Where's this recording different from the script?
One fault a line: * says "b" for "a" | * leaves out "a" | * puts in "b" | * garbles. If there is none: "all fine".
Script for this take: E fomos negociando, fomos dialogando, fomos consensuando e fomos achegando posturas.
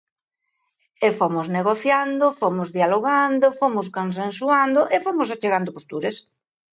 all fine